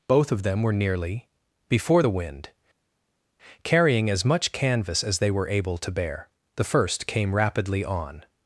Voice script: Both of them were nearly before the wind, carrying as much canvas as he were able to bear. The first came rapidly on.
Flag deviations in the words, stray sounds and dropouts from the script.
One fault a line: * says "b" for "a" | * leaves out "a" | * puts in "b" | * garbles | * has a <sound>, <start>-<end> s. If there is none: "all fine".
* says "they" for "he"